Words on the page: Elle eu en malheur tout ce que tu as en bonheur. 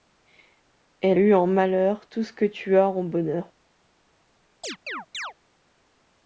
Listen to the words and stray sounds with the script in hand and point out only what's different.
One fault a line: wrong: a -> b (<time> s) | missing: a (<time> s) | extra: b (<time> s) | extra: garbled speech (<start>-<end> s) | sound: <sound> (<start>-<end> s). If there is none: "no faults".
sound: chirp (4.6-5.3 s)